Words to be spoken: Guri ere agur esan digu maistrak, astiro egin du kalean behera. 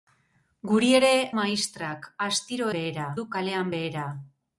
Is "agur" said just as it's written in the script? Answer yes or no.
no